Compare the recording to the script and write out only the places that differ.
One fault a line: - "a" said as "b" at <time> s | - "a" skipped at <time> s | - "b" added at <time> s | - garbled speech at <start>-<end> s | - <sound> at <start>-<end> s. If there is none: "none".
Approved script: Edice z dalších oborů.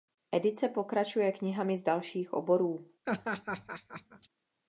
- "pokračuje knihami" added at 0.7 s
- laugh at 3.1-4.3 s